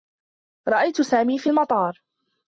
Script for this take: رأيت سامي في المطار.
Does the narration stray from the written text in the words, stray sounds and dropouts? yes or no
no